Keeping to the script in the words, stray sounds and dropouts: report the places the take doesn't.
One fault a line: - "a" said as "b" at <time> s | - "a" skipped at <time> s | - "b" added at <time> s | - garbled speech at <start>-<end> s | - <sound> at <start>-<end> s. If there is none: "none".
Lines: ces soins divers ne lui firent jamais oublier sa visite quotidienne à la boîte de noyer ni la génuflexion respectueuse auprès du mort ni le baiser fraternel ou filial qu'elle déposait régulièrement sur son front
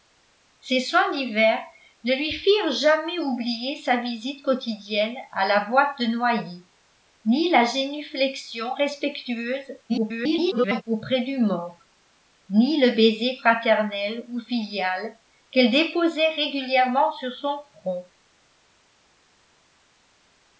- garbled speech at 9.9-10.8 s